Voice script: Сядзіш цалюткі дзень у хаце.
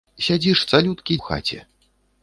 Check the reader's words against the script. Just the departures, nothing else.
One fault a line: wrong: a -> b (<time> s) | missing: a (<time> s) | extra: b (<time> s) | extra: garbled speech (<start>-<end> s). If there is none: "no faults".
missing: дзень (1.2 s)